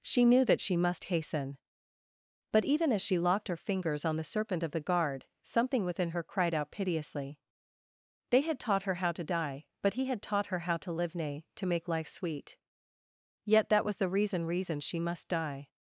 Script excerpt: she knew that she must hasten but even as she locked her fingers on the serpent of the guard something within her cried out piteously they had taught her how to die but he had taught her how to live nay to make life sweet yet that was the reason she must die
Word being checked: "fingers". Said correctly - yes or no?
yes